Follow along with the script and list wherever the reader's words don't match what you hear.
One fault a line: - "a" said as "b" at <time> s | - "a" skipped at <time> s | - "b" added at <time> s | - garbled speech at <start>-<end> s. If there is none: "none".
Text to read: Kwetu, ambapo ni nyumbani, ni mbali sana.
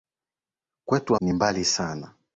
- "ambapo ni nyumbani" skipped at 1.1 s